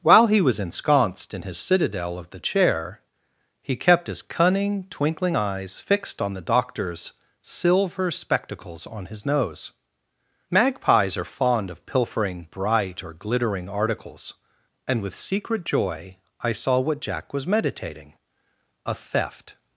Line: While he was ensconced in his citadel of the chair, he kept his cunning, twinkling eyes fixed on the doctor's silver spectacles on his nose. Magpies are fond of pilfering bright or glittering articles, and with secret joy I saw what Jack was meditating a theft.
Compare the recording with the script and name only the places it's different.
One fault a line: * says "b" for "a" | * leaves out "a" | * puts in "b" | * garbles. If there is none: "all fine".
all fine